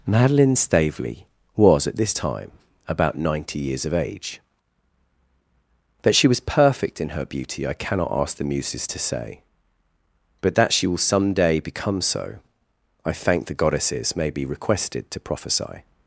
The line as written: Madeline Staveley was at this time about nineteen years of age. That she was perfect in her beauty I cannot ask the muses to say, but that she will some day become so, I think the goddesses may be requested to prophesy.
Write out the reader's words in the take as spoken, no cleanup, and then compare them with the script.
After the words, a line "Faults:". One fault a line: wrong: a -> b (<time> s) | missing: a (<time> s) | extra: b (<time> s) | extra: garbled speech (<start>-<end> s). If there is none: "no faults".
Madeline Staveley was at this time about ninety years of age. That she was perfect in her beauty I cannot ask the muses to say, but that she will some day become so, I thank the goddesses may be requested to prophesy.
Faults:
wrong: nineteen -> ninety (3.2 s)
wrong: think -> thank (13.1 s)